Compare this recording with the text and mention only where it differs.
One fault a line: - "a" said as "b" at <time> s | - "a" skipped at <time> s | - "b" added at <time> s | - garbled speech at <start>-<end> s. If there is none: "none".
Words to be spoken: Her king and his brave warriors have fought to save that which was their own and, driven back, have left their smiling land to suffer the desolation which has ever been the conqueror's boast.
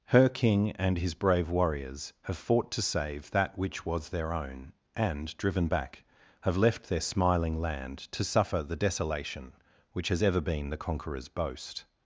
none